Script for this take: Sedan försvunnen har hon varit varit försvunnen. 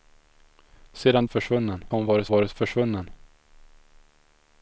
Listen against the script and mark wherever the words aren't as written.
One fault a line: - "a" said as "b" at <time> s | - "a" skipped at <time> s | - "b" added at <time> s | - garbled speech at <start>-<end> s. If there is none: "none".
none